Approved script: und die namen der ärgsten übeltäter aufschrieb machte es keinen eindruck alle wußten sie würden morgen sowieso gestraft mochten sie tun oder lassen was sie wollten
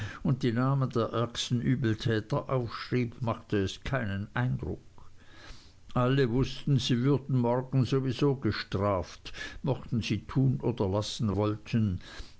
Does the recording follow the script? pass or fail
fail